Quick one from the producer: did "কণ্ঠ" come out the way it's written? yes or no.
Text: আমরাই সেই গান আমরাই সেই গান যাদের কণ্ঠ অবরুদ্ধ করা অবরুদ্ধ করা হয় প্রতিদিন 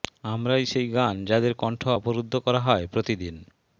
yes